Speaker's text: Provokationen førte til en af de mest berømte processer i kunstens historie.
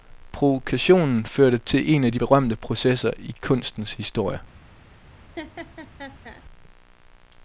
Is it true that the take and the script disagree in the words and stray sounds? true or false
true